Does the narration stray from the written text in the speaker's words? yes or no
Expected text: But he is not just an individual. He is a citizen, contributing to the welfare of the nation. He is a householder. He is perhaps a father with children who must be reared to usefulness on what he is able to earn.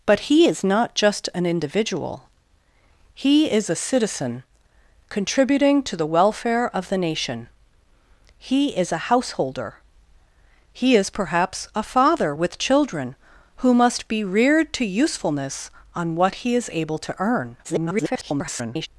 yes